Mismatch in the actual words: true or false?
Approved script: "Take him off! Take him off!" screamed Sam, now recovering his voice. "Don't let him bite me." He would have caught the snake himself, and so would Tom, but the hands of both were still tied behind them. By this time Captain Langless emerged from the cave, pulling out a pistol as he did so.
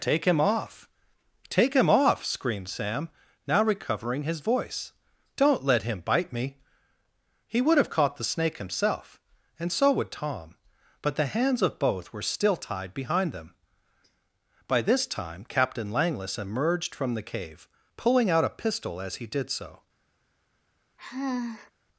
false